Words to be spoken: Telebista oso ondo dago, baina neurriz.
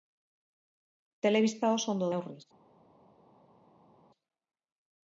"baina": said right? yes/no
no